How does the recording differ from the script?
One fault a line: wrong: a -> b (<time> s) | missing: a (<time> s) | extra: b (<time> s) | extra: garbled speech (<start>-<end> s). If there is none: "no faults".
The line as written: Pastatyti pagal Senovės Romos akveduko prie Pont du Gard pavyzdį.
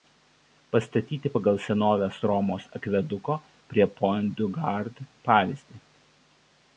no faults